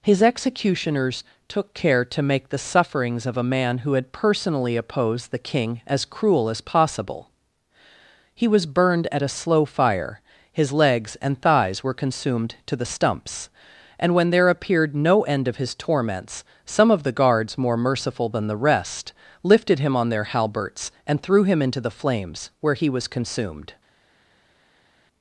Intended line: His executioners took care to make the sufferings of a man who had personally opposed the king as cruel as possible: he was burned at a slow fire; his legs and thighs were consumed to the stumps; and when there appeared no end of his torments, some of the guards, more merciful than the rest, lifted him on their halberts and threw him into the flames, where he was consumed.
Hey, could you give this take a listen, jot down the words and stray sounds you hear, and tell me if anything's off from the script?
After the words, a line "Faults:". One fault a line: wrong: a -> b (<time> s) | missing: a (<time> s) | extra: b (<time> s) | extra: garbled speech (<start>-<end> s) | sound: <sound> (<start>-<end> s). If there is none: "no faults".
His executioners took care to make the sufferings of a man who had personally opposed the king as cruel as possible: he was burned at a slow fire; his legs and thighs were consumed to the stumps; and when there appeared no end of his torments, some of the guards, more merciful than the rest, lifted him on their halberts and threw him into the flames, where he was consumed.
Faults:
no faults